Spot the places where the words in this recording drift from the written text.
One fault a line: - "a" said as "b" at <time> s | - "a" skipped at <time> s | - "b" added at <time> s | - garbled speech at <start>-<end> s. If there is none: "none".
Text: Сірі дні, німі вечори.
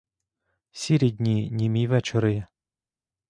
none